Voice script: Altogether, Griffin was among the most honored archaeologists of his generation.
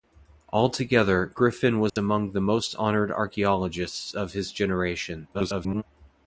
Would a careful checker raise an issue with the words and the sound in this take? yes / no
yes